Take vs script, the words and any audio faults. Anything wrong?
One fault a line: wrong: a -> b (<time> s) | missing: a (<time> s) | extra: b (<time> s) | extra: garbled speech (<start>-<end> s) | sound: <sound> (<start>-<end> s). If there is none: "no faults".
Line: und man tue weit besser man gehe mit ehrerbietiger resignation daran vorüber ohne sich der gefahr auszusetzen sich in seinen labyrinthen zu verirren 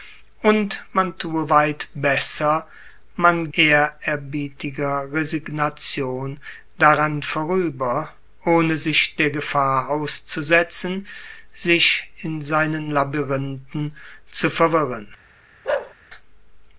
missing: gehe mit (3.5 s)
sound: bark (15.6-15.9 s)